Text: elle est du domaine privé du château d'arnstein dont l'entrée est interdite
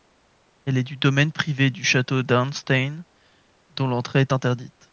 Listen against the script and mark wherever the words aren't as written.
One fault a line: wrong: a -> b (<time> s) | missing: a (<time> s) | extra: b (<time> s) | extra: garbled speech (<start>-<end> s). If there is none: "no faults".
no faults